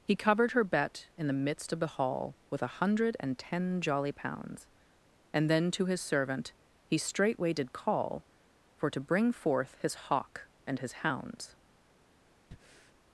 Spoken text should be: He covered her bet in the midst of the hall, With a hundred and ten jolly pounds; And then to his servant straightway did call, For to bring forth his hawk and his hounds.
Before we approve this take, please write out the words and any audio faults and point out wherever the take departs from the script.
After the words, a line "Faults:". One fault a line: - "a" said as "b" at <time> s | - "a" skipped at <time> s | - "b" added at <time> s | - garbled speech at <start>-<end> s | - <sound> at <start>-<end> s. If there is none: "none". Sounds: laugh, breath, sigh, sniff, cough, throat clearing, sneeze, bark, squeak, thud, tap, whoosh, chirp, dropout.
He covered her bet in the midst of the hall, With a hundred and ten jolly pounds; And then to his servant he straightway did call, For to bring forth his hawk and his hounds.
Faults:
- "he" added at 6.8 s
- breath at 12.5-13.0 s